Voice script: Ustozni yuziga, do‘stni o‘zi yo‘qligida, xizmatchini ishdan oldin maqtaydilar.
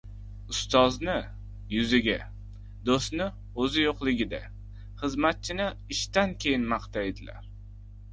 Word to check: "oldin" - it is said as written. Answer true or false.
false